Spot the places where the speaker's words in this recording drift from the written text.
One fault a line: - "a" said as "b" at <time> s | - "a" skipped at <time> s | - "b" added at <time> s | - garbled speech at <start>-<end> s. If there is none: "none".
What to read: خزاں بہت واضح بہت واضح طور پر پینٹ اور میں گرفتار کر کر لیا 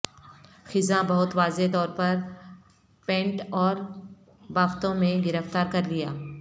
- "بہت واضح" skipped at 1.7 s
- "بافتوں" added at 4.5 s
- "کر" skipped at 5.8 s